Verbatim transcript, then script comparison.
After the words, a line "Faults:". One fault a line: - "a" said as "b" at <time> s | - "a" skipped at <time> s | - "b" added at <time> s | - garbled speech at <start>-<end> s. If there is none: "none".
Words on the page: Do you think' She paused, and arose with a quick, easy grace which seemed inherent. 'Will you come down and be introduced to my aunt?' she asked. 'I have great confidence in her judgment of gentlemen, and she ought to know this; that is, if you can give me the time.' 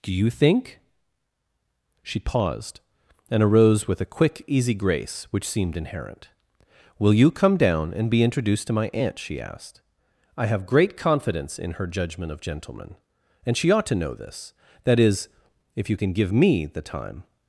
Do you think' She paused, and arose with a quick, easy grace which seemed inherent. 'Will you come down and be introduced to my aunt?' she asked. 'I have great confidence in her judgment of gentlemen, and she ought to know this; that is, if you can give me the time.'
Faults:
none